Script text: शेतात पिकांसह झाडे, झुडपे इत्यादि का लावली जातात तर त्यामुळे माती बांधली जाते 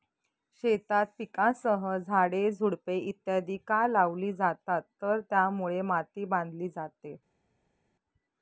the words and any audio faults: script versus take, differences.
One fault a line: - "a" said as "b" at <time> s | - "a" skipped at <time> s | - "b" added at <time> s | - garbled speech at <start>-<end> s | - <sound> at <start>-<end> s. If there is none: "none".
none